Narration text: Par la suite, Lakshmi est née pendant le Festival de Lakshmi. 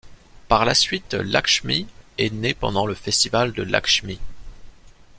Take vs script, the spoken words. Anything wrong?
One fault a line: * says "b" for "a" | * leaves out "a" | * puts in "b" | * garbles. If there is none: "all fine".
all fine